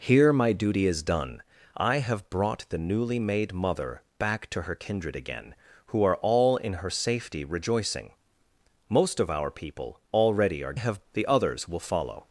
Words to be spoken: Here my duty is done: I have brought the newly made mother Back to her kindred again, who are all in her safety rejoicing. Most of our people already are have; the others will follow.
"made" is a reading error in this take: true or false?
false